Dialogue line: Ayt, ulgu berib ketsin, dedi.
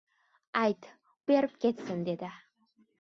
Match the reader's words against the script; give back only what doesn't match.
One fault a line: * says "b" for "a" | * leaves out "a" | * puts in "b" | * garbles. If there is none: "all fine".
* leaves out "ulgu"